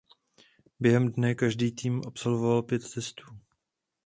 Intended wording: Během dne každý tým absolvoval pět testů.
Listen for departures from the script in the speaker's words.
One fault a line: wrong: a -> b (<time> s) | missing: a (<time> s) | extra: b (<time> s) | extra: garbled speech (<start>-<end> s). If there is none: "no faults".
no faults